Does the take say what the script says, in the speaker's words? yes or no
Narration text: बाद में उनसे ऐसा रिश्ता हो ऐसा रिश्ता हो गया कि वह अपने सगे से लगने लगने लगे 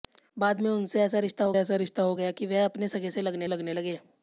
yes